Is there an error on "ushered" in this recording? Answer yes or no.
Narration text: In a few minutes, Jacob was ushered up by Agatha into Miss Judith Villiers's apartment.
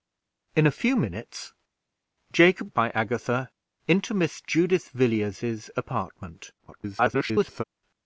yes